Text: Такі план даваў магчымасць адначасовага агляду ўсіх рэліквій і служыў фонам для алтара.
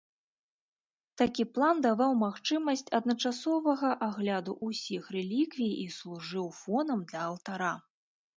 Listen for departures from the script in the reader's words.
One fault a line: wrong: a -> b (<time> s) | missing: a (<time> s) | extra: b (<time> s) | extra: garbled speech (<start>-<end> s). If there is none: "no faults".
no faults